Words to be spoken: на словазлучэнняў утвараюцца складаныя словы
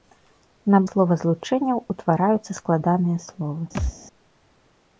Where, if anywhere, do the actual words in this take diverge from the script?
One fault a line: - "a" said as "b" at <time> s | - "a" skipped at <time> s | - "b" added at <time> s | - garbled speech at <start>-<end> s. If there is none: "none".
none